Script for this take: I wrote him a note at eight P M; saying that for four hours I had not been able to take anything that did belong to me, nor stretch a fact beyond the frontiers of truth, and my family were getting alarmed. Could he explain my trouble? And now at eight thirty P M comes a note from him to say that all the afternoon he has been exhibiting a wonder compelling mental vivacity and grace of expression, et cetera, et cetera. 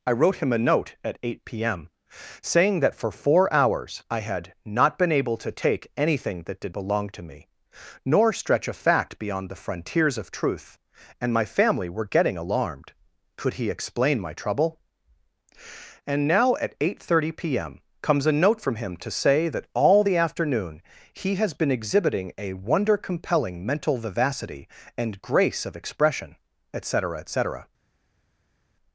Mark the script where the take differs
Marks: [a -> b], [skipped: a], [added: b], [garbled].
I wrote him a note at eight P M; saying that for four hours I had not been able to take anything that did belong to me, nor stretch a fact beyond the frontiers of truth, and my family were getting alarmed. Could he explain my trouble? And now at eight thirty P M comes a note from him to say that all the afternoon he has been exhibiting a wonder compelling mental vivacity and grace of expression, et cetera, et cetera.